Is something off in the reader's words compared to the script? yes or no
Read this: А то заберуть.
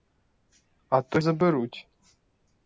no